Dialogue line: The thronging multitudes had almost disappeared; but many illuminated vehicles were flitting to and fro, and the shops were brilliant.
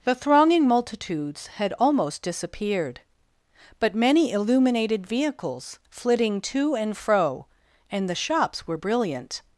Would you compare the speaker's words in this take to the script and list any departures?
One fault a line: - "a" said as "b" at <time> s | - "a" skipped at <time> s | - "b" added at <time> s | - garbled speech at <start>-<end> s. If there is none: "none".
- "were" skipped at 5.8 s